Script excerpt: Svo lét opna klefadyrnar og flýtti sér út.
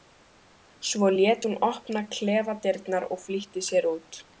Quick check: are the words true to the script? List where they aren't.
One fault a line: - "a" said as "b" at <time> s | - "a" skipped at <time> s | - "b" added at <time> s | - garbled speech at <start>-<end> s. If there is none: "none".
- "hún" added at 1.5 s